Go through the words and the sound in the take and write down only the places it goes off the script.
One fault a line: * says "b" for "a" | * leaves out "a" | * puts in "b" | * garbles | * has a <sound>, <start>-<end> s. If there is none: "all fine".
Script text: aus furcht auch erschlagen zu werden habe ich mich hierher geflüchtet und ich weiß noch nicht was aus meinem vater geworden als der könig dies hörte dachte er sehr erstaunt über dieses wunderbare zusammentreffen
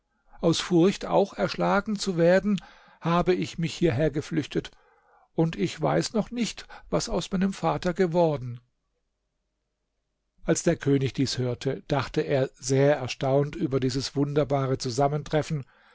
all fine